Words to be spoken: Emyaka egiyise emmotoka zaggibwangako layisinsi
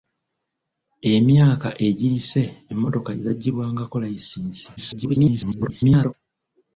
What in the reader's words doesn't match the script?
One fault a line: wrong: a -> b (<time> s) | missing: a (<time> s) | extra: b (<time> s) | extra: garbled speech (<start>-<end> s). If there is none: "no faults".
extra: garbled speech (4.8-6.1 s)